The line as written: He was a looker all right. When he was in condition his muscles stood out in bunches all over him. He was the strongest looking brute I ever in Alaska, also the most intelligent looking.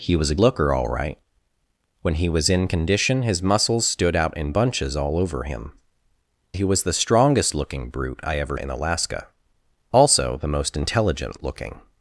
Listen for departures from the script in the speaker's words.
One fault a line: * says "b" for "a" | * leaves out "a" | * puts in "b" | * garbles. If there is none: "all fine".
all fine